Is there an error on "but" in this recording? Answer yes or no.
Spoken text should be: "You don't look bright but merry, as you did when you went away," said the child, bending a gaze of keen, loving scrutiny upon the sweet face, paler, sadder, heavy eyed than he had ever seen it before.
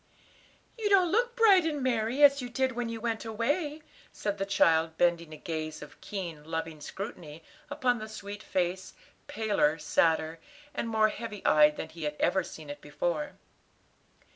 yes